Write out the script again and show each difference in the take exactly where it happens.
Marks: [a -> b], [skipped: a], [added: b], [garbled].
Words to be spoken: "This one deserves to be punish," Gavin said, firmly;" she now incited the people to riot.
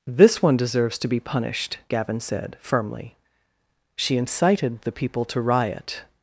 "This one deserves to be [punish," -> punished] Gavin said, firmly;" she [skipped: now] incited the people to riot.